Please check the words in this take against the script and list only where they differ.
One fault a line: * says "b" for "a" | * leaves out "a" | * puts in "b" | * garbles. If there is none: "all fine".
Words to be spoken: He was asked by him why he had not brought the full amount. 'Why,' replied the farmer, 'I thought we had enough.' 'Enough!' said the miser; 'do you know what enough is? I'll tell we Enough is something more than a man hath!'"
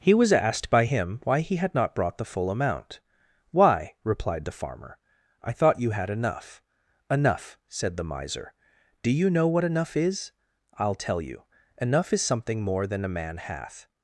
* says "you" for "we"
* says "you" for "we"